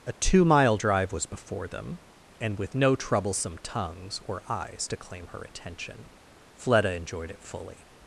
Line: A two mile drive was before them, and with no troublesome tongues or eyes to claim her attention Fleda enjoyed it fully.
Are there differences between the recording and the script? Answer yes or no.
no